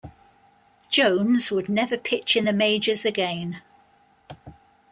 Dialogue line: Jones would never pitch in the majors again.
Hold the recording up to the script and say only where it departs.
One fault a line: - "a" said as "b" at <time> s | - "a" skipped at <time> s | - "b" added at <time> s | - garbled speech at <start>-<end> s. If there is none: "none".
none